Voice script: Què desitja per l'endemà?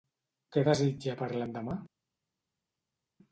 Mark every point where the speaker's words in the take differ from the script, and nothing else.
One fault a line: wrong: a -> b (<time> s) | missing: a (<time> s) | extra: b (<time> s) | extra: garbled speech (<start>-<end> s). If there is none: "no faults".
no faults